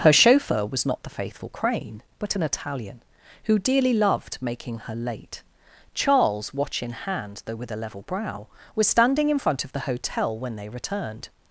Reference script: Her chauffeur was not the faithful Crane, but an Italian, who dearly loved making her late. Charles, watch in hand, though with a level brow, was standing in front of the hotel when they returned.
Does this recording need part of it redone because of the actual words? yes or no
no